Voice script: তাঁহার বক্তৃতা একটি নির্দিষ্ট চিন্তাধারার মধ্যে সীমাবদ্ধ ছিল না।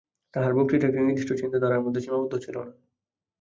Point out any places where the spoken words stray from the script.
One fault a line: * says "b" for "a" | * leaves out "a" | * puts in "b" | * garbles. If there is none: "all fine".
all fine